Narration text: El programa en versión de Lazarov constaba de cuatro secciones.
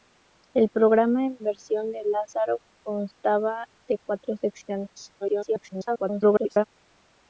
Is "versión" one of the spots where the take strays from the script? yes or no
no